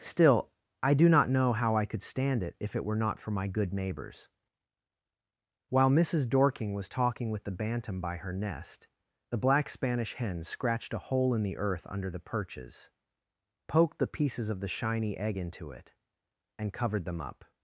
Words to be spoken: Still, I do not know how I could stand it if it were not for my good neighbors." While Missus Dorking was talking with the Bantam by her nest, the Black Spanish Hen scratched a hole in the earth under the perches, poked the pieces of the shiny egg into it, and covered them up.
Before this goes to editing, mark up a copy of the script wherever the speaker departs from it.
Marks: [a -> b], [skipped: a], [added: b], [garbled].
Still, I do not know how I could stand it if it were not for my good neighbors." While Missus Dorking was talking with the Bantam by her nest, the Black Spanish Hen scratched a hole in the earth under the perches, poked the pieces of the shiny egg into it, and covered them up.